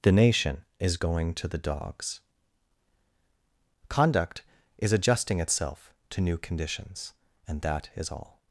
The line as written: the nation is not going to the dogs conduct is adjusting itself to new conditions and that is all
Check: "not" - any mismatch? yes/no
yes